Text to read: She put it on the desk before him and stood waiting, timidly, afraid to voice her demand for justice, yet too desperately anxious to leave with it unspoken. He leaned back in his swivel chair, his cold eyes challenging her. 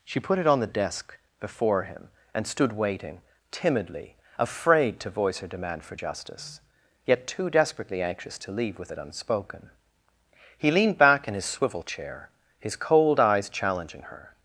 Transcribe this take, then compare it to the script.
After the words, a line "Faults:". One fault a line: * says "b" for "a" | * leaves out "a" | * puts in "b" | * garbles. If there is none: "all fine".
She put it on the desk before him and stood waiting, timidly, afraid to voice her demand for justice, yet too desperately anxious to leave with it unspoken. He leaned back in his swivel chair, his cold eyes challenging her.
Faults:
all fine